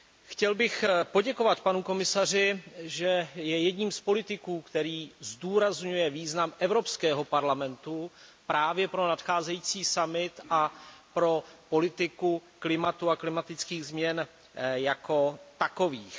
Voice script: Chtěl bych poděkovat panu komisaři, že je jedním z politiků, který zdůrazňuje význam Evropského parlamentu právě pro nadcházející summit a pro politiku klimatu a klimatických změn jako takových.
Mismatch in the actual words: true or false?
false